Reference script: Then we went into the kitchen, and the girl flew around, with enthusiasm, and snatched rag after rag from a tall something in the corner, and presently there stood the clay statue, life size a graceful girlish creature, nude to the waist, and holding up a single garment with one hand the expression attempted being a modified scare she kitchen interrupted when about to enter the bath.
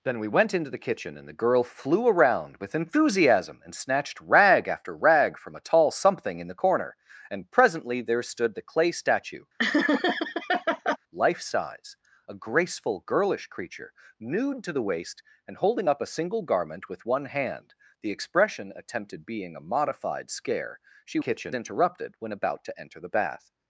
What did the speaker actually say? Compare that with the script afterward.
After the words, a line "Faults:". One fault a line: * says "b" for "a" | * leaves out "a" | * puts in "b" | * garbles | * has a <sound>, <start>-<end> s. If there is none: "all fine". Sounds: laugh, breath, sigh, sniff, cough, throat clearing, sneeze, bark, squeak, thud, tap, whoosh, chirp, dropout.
Then we went into the kitchen, and the girl flew around, with enthusiasm, and snatched rag after rag from a tall something in the corner, and presently there stood the clay statue, life size a graceful girlish creature, nude to the waist, and holding up a single garment with one hand the expression attempted being a modified scare she kitchen interrupted when about to enter the bath.
Faults:
* has a laugh, 9.6-11.0 s